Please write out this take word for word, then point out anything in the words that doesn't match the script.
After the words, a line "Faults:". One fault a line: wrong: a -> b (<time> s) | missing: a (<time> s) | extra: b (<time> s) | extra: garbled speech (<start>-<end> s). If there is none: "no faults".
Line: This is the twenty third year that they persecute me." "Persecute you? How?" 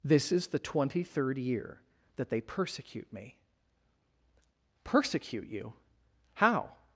This is the twenty third year that they persecute me." "Persecute you? How?"
Faults:
no faults